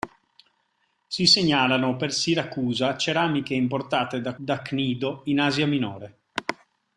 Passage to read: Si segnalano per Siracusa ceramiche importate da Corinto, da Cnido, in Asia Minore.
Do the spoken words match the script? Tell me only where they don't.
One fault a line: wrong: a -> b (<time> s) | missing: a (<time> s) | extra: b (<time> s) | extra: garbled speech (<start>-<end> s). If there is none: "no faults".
missing: Corinto (4.3 s)